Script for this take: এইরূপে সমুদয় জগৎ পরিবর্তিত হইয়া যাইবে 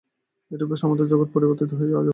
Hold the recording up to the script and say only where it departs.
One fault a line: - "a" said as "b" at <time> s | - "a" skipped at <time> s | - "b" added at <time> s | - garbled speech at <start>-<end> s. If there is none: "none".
none